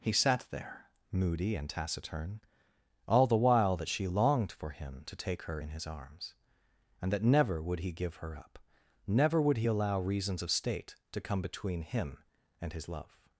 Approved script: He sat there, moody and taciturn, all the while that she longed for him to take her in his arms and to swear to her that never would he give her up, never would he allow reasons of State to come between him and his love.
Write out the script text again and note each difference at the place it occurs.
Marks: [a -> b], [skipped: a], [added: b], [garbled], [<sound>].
He sat there, moody and taciturn, all the while that she longed for him to take her in his arms and [skipped: to swear to her] that never would he give her up, never would he allow reasons of State to come between him and his love.